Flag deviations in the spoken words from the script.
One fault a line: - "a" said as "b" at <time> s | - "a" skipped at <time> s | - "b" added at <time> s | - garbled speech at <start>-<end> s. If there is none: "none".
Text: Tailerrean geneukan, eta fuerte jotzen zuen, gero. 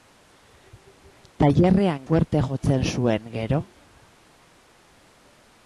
- "geneukan eta" skipped at 2.1 s